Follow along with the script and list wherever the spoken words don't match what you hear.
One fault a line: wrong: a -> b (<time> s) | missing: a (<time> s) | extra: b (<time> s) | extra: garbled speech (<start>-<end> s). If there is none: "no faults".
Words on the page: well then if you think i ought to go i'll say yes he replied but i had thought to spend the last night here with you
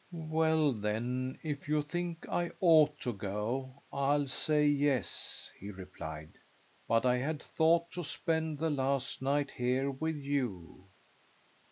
no faults